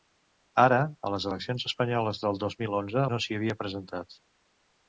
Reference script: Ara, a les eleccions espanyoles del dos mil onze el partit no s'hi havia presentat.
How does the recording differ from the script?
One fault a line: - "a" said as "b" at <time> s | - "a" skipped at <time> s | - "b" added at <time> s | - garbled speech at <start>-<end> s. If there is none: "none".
- "el partit" skipped at 3.0 s